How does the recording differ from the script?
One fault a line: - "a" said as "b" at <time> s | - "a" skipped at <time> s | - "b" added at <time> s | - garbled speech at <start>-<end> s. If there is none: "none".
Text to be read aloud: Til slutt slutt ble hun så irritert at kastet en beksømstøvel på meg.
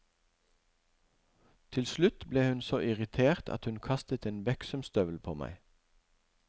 - "slutt" skipped at 2.2 s
- "hun" added at 3.6 s